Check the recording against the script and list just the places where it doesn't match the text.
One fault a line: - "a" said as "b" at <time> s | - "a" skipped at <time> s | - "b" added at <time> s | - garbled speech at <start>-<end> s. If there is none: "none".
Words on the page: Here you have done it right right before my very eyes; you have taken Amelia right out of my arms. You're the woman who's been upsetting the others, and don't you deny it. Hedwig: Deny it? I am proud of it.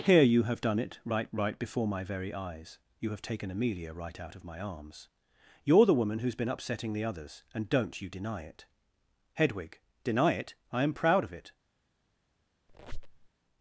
none